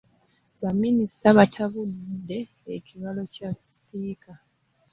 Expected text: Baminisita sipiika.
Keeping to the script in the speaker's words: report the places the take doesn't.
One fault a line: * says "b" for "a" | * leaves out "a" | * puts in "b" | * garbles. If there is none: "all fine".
* puts in "batabudde ekibalo kya"